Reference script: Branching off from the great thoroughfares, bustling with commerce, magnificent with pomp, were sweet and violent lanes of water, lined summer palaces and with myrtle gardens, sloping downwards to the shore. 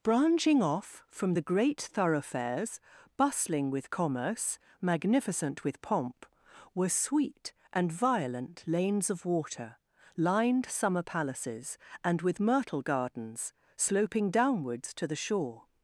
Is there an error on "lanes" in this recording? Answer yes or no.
no